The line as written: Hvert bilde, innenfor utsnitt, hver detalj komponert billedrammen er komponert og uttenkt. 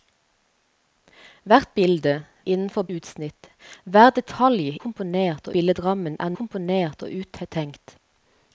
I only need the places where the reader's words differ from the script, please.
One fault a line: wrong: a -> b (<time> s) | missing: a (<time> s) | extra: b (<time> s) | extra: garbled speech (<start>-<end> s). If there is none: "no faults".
no faults